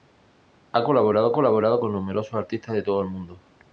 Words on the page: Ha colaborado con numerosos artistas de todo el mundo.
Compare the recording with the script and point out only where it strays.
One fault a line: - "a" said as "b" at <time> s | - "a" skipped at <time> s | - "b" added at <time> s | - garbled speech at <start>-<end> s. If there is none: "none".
- "colaborado" added at 1.3 s